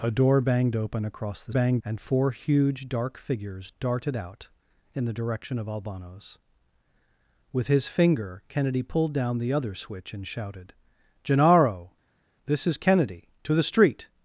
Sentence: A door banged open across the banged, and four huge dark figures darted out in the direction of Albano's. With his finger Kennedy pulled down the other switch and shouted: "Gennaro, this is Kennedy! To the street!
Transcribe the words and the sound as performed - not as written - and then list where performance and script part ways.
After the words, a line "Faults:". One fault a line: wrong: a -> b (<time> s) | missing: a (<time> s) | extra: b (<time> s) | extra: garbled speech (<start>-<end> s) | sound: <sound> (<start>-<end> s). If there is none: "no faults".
A door banged open across the banged, and four huge dark figures darted out in the direction of Albano's. With his finger Kennedy pulled down the other switch and shouted: "Gennaro, this is Kennedy! To the street!
Faults:
no faults